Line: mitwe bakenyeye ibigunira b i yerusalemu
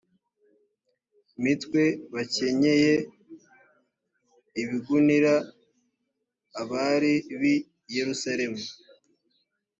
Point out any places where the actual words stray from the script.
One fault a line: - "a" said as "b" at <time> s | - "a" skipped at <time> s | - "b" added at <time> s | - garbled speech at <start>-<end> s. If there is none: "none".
- "abari" added at 6.6 s